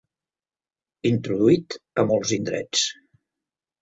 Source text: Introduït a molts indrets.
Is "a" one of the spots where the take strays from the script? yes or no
no